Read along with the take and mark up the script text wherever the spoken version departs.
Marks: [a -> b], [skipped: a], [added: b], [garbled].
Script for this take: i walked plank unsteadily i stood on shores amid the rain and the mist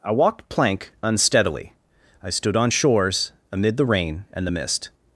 i walked plank unsteadily i stood on shores amid the rain and the mist